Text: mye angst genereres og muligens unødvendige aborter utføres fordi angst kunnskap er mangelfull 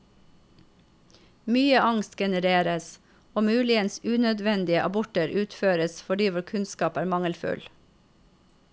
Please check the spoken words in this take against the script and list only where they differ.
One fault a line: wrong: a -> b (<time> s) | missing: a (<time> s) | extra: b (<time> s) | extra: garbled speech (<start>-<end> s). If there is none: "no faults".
wrong: angst -> vår (6.4 s)